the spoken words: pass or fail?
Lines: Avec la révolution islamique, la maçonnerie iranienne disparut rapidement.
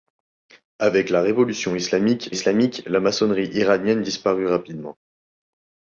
fail